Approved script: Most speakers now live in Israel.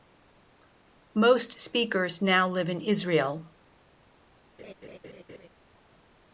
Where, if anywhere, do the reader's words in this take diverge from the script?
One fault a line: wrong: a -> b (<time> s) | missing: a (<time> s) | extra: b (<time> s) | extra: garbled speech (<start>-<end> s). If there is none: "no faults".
no faults